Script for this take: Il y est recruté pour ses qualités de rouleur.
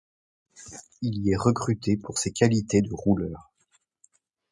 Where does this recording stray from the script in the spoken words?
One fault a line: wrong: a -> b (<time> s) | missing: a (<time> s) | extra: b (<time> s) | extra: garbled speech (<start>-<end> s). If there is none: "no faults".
no faults